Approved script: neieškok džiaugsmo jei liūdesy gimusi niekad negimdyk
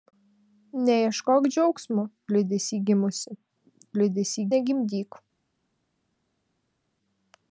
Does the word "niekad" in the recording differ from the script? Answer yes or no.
yes